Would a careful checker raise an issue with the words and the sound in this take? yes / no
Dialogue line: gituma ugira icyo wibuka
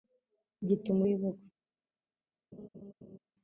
yes